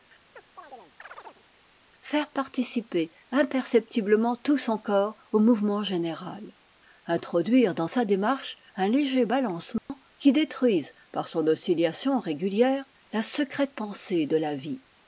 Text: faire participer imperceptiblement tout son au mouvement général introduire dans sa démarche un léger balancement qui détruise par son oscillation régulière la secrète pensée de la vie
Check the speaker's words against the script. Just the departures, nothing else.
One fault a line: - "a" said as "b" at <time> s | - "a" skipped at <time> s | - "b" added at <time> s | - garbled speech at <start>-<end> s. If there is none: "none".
- "corps" added at 4.8 s